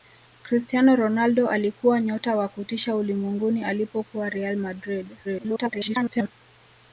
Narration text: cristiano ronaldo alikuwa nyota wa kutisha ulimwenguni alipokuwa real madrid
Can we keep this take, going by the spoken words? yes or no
no